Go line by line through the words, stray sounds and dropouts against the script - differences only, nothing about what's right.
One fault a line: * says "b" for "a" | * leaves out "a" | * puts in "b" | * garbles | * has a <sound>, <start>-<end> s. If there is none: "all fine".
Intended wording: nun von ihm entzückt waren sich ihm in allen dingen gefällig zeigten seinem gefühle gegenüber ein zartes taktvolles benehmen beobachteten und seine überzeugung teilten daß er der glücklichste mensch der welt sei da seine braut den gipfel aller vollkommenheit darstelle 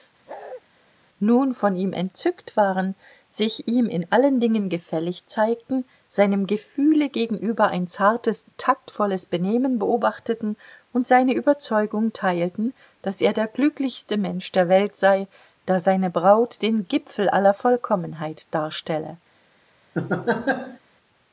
* has a bark, 0.3-0.6 s
* has a laugh, 19.9-20.8 s